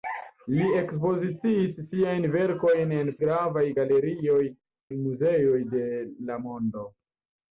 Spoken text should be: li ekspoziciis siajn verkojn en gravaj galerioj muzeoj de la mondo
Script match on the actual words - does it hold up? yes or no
yes